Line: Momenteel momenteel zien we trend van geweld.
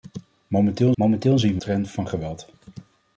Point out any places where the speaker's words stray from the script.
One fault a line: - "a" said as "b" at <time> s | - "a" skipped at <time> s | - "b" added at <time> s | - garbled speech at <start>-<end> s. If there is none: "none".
none